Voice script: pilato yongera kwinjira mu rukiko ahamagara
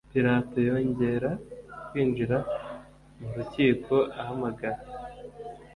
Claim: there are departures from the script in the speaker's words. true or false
false